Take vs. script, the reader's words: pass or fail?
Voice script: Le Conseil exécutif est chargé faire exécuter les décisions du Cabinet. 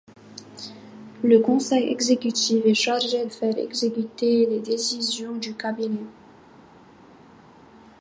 pass